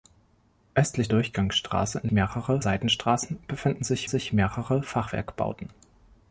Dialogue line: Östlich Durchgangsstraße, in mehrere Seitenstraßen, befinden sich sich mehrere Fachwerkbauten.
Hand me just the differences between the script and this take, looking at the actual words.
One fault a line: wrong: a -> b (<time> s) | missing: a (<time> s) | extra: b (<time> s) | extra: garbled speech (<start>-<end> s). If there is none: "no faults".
no faults